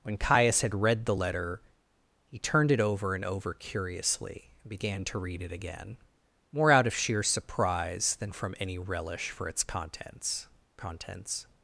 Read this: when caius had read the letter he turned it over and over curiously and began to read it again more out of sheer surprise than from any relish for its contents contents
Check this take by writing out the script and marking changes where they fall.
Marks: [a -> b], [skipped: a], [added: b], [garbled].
when caius had read the letter he turned it over and over curiously and began to read it again more out of sheer surprise than from any relish for its contents contents